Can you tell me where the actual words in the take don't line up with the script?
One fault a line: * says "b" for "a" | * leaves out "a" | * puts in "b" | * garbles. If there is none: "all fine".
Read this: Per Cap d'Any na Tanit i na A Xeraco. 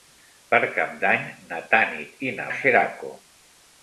all fine